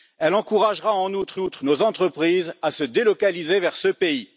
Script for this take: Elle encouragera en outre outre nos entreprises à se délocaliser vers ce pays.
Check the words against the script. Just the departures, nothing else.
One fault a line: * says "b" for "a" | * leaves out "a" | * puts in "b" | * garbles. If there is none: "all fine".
all fine